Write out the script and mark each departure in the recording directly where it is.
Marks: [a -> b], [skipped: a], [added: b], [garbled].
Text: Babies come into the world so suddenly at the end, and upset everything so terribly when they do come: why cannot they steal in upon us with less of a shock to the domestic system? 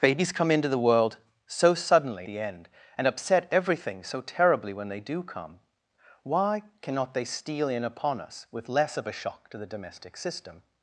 Babies come into the world so suddenly [skipped: at] the end, and upset everything so terribly when they do come: why cannot they steal in upon us with less of a shock to the domestic system?